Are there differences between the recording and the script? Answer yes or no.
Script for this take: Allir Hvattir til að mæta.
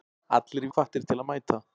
no